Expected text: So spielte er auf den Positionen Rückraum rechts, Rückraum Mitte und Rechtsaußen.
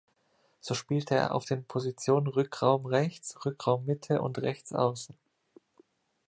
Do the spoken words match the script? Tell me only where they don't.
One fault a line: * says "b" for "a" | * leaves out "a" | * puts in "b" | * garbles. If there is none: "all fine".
all fine